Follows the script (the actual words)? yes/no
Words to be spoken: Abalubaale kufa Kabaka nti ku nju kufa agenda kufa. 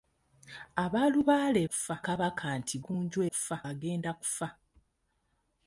yes